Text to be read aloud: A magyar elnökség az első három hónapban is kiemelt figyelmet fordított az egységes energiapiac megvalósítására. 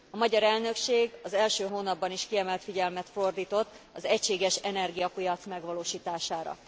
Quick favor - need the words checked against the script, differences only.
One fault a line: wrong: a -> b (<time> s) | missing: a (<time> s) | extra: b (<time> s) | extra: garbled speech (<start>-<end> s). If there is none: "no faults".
missing: három (1.7 s)